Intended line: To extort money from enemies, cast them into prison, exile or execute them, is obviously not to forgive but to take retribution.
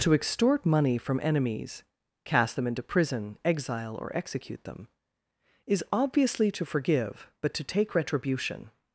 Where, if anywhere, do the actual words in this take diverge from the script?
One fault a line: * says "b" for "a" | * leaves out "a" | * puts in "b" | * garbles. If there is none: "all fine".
* leaves out "not"